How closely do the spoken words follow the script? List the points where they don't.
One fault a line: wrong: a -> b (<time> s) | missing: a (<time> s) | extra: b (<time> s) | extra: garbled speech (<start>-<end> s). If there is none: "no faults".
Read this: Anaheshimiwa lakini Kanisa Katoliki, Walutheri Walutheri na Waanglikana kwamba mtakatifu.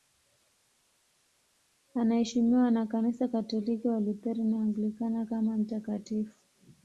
wrong: lakini -> na (2.7 s)
missing: Walutheri (4.4 s)
wrong: kwamba -> kama (5.2 s)